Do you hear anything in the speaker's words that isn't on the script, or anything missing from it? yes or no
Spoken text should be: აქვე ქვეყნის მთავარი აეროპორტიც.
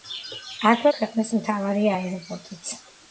no